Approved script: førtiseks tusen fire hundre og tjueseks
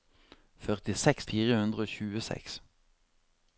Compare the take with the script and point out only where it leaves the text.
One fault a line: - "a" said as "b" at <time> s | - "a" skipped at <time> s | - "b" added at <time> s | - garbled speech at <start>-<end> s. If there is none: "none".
- "tusen" skipped at 1.3 s